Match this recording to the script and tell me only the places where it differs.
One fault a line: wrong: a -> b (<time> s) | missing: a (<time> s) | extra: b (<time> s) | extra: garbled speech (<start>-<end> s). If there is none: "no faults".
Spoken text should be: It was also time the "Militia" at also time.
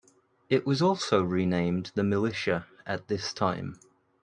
wrong: time -> renamed (1.2 s)
wrong: also -> this (3.1 s)